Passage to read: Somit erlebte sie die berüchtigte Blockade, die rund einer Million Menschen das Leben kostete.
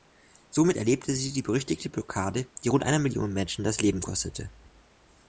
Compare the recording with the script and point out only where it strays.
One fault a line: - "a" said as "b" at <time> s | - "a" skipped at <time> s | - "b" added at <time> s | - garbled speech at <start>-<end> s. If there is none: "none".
none